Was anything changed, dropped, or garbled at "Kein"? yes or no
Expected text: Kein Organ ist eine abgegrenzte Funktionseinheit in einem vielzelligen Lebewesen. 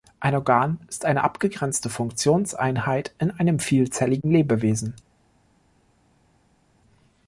yes